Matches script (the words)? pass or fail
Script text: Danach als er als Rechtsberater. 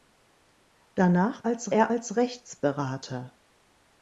pass